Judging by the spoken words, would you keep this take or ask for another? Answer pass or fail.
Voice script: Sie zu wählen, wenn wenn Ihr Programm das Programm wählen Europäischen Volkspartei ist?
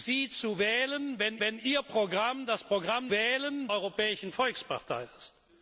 pass